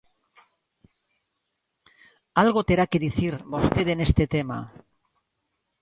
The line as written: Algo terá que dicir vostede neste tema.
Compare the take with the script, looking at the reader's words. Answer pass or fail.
pass